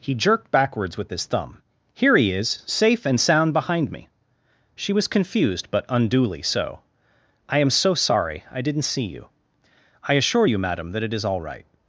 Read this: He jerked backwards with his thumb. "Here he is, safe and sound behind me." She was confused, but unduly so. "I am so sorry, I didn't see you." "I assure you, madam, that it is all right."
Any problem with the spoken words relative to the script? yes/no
no